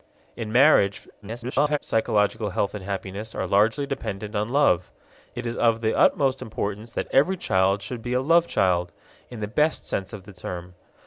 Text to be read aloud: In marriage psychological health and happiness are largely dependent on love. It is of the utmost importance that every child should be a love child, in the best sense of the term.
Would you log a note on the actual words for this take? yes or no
yes